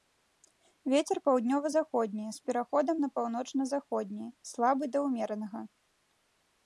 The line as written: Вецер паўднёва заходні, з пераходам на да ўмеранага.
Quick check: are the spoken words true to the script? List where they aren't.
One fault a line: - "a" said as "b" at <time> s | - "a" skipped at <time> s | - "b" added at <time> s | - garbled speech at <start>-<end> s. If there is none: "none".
- "паўночна заходні слабы" added at 3.2 s